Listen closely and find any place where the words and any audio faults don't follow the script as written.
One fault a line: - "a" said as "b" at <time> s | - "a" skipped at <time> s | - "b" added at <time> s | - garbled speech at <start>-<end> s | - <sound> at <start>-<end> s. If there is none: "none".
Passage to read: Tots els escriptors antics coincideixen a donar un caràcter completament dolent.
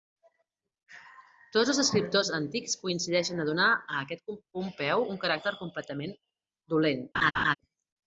- "a aquest Pompeu" added at 3.8 s
- laugh at 7.1-7.5 s